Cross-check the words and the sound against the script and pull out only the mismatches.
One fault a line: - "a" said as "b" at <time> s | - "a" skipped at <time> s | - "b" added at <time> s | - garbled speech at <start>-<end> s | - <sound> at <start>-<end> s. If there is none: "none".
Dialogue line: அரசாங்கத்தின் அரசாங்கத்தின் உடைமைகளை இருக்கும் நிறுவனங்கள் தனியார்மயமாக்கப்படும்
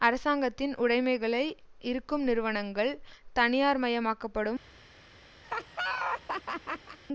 - "அரசாங்கத்தின்" skipped at 0.7 s
- laugh at 5.4-7.0 s